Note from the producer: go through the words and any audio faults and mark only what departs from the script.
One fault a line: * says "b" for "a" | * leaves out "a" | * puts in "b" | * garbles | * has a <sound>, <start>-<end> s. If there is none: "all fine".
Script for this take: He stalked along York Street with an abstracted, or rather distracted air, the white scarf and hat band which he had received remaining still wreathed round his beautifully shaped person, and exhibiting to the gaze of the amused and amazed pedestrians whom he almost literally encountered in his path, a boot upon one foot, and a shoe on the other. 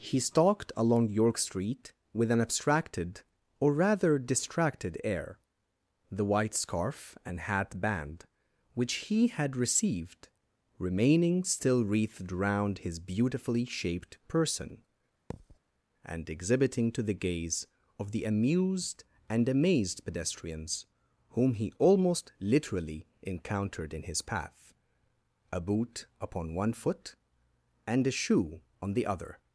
* has a thud, 15.3-15.6 s